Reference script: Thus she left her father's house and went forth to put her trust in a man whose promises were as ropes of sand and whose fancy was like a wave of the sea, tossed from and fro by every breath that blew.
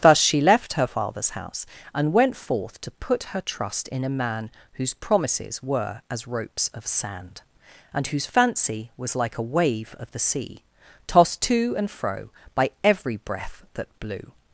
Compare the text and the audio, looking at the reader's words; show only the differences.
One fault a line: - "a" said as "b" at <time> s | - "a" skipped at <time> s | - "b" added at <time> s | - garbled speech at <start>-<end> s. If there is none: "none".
- "from" said as "to" at 11.4 s